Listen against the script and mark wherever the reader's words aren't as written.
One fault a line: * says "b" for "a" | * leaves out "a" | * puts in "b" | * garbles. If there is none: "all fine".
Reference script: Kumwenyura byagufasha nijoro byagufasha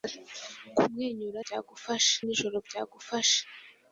all fine